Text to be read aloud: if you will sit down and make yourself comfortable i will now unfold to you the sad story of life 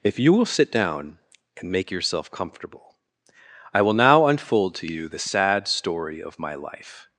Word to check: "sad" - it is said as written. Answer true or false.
true